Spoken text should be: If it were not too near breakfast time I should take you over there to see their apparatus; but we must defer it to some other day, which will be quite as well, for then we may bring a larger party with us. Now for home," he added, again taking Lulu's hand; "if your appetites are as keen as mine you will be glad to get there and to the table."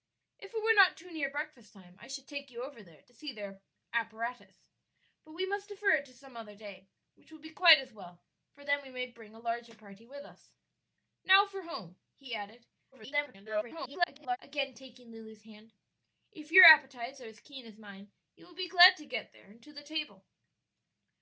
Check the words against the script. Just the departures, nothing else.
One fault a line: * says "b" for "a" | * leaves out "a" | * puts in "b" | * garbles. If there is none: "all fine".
* garbles